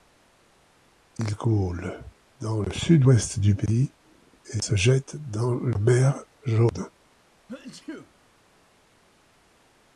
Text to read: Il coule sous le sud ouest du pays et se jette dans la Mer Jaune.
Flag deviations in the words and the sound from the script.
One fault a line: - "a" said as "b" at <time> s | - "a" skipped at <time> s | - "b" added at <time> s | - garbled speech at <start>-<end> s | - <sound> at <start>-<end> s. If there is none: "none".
- "sous" said as "dans" at 2.4 s
- sneeze at 7.5-8.1 s